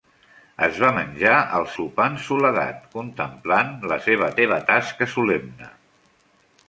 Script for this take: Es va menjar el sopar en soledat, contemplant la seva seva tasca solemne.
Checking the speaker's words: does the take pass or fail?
pass